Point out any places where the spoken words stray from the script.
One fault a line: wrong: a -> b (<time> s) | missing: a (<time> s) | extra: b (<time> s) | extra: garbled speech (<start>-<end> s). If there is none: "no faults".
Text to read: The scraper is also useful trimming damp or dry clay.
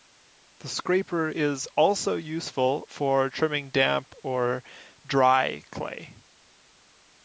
extra: for (2.9 s)